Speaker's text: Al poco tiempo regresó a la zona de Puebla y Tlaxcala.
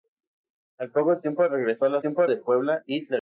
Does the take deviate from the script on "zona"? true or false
true